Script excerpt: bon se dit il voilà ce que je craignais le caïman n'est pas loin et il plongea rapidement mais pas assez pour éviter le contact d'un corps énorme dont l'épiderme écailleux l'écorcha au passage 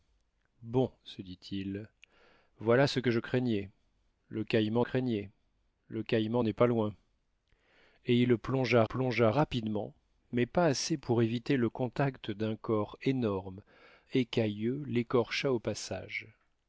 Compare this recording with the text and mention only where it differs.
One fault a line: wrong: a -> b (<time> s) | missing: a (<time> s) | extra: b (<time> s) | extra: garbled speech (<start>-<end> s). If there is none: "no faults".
extra: craignais le caïman (4.8 s)
extra: plongea (8.8 s)
missing: dont l'épiderme (13.6 s)